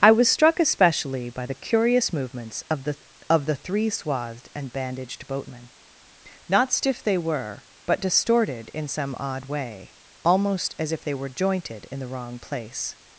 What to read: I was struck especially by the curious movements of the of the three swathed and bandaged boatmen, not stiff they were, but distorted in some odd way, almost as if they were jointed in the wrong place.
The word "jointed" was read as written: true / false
true